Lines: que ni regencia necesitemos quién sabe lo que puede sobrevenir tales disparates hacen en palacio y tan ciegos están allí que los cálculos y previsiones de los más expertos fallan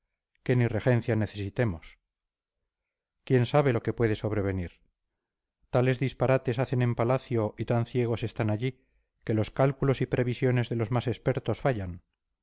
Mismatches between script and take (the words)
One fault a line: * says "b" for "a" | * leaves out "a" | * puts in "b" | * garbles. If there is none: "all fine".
all fine